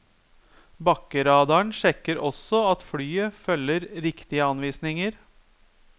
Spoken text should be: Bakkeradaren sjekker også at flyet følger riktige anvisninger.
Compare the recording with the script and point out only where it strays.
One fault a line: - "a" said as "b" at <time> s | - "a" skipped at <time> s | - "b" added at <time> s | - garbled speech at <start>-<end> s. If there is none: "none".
none